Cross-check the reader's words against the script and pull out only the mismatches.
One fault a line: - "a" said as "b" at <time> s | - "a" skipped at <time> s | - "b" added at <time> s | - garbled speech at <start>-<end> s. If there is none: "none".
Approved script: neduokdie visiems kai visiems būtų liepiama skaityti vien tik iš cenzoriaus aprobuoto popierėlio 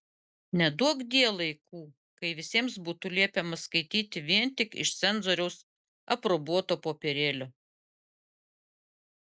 - "visiems" said as "laikų" at 1.4 s